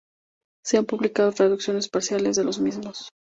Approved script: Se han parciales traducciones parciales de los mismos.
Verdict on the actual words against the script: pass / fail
fail